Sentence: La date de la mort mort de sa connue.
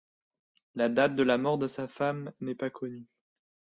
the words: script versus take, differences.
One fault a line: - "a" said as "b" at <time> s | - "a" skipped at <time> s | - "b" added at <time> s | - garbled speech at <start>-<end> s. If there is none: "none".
- "mort" skipped at 1.6 s
- "femme n'est pas" added at 1.9 s